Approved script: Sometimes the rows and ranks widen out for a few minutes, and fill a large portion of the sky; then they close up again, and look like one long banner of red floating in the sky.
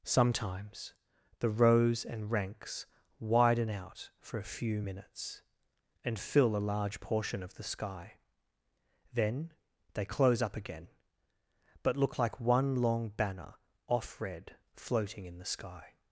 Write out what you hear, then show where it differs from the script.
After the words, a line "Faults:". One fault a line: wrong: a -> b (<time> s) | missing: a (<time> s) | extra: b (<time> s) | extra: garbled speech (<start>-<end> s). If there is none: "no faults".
Sometimes the rows and ranks widen out for a few minutes, and fill a large portion of the sky; then they close up again, but look like one long banner off red floating in the sky.
Faults:
wrong: and -> but (11.8 s)
wrong: of -> off (13.9 s)